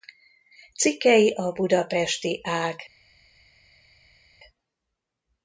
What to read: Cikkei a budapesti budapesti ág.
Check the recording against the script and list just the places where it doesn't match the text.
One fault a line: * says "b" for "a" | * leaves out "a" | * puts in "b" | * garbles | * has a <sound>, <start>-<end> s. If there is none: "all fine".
* leaves out "budapesti"